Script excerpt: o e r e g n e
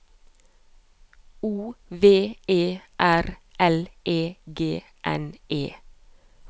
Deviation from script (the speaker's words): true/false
true